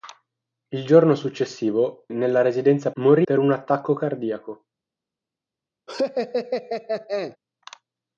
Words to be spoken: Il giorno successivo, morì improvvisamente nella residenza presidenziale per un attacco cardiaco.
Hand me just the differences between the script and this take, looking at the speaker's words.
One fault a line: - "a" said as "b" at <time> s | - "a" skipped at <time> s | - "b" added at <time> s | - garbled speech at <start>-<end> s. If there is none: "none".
- "morì improvvisamente" skipped at 2.1 s
- "presidenziale" said as "morì" at 3.0 s